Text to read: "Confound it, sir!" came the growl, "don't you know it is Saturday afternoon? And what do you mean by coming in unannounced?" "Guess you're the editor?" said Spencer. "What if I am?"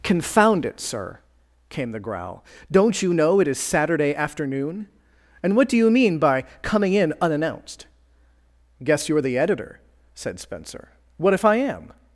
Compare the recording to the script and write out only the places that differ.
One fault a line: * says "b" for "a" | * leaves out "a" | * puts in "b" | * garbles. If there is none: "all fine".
all fine